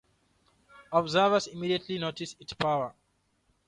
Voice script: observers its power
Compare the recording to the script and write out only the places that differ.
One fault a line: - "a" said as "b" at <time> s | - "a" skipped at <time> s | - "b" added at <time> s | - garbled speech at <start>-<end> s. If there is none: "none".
- "immediately noticed" added at 1.4 s